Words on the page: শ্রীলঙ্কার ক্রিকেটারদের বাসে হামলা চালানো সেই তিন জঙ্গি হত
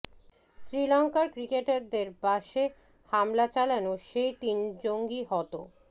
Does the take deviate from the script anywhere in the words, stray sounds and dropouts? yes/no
no